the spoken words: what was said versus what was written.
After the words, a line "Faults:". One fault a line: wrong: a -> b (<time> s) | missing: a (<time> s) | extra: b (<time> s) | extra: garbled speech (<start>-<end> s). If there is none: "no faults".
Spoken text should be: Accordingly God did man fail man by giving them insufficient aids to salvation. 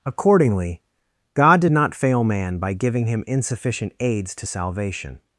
Accordingly God did not fail man by giving him insufficient aids to salvation.
Faults:
wrong: man -> not (1.7 s)
wrong: them -> him (3.1 s)